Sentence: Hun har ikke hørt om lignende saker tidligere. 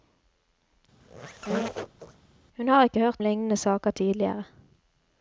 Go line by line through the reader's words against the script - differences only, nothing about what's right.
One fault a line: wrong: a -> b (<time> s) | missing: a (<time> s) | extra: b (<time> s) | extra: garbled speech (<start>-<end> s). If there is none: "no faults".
missing: om (3.2 s)